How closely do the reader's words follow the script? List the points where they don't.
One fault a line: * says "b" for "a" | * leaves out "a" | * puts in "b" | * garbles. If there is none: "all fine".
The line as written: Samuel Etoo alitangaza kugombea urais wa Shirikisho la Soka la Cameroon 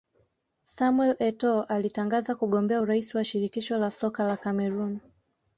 all fine